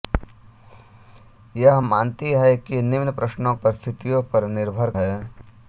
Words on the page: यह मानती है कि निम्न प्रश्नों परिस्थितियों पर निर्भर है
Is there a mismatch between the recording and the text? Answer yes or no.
no